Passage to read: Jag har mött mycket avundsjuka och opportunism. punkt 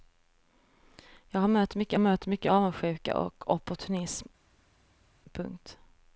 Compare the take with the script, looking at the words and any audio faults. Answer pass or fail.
fail